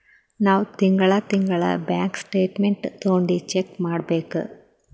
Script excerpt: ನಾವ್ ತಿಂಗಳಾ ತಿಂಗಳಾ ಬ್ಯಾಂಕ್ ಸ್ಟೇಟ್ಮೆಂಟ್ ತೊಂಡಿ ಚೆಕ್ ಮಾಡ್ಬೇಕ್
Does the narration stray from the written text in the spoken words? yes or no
no